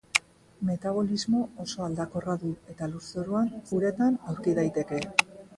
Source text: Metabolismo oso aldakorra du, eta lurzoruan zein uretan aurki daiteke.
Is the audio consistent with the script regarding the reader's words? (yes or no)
no